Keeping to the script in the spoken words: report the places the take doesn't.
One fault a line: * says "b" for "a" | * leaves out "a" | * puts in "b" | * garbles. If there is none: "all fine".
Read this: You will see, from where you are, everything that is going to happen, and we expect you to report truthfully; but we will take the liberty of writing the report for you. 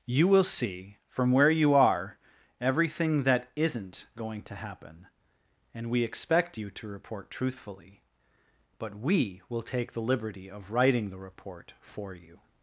* says "isn't" for "is"